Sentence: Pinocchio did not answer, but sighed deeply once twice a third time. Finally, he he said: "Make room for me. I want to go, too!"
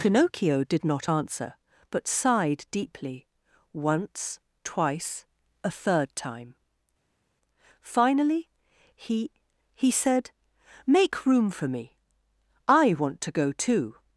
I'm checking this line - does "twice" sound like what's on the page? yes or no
yes